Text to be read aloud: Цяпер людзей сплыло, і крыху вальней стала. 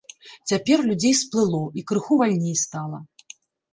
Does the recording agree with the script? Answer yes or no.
yes